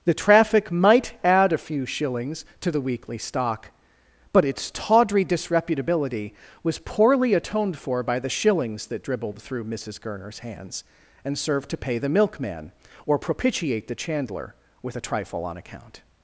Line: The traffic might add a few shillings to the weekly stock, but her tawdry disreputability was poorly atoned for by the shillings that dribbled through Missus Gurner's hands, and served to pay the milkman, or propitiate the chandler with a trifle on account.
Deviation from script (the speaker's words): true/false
true